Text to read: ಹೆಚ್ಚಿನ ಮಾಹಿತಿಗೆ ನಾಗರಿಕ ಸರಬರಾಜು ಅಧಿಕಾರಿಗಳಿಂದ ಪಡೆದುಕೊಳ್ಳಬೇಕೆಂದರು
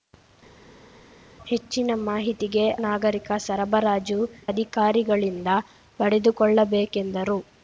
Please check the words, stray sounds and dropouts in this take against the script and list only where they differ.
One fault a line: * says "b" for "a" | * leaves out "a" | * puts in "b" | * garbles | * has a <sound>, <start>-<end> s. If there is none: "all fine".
all fine